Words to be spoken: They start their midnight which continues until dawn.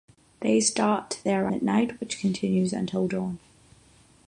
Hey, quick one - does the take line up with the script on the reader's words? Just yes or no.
yes